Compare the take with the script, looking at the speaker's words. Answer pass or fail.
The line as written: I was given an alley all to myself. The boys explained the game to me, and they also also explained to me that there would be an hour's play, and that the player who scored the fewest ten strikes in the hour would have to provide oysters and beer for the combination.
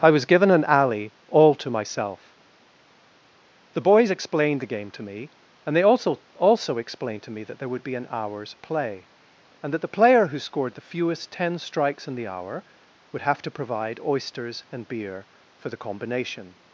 pass